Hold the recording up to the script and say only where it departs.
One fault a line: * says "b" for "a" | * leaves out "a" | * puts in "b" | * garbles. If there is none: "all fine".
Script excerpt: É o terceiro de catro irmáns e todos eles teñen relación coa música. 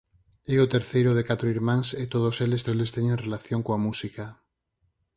* puts in "eles"